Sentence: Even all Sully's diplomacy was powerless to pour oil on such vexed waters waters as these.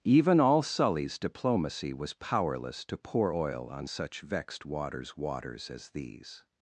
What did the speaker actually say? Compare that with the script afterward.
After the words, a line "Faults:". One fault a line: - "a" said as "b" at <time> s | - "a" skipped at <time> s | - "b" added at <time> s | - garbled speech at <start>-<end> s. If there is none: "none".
Even all Sully's diplomacy was powerless to pour oil on such vexed waters waters as these.
Faults:
none